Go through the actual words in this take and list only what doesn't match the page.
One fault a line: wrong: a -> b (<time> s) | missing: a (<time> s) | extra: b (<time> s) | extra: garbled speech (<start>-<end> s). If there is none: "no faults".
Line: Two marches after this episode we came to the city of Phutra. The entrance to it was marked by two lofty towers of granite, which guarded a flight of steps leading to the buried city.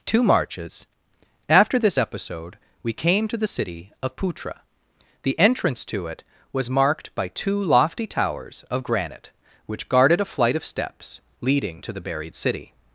no faults